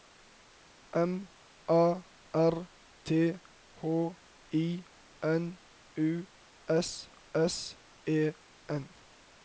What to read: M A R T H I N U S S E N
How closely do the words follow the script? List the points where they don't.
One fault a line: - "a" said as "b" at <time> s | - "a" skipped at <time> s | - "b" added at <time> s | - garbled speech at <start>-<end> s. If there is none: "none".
none